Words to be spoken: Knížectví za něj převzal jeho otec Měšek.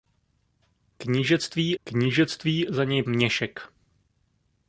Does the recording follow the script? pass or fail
fail